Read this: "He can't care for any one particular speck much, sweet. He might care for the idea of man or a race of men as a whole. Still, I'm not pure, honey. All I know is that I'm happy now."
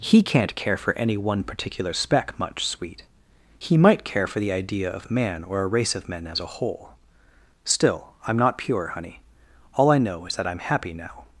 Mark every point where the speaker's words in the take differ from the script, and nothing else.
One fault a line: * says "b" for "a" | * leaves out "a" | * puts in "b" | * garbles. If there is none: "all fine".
all fine